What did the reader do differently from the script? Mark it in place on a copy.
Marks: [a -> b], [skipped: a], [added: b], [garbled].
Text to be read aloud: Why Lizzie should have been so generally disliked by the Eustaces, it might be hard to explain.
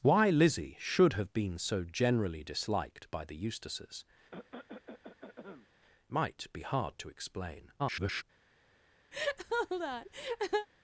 Why Lizzie should have been so generally disliked by the Eustaces, [skipped: it] might be hard to explain. [garbled]